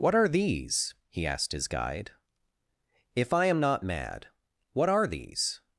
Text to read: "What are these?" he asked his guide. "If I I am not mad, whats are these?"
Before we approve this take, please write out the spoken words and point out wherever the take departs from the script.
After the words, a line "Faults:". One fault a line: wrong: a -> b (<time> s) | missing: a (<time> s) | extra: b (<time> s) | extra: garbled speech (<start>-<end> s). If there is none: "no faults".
"What are these?" he asked his guide. "If I am not mad, what are these?"
Faults:
missing: I (3.5 s)
wrong: whats -> what (4.7 s)